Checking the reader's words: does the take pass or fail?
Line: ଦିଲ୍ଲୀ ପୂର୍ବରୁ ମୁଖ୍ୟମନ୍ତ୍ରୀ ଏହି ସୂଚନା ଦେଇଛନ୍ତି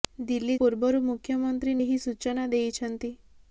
pass